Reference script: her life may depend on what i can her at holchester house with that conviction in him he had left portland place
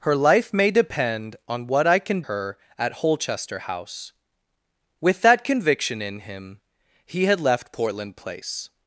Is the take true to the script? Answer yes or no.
yes